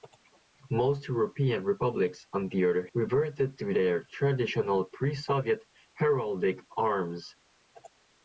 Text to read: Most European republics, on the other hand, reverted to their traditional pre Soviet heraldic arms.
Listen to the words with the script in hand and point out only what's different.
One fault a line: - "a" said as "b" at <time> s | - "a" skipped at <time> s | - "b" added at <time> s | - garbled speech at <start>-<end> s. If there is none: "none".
- "hand" skipped at 2.9 s